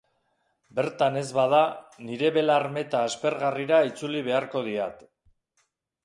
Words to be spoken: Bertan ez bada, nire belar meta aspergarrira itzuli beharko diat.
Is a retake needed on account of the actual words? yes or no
no